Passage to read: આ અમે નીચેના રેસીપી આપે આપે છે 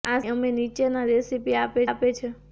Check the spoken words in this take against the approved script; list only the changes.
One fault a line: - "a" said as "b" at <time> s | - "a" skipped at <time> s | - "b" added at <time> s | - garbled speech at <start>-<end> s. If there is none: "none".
none